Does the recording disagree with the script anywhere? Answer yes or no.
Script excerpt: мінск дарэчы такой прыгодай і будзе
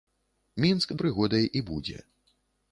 yes